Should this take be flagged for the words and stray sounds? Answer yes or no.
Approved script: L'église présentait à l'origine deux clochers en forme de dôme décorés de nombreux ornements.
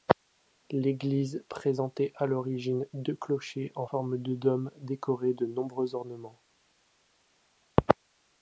no